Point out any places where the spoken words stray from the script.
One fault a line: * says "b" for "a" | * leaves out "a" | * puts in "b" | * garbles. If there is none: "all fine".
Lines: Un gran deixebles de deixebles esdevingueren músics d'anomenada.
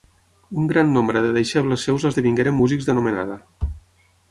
* says "nombre" for "deixebles"
* puts in "seus"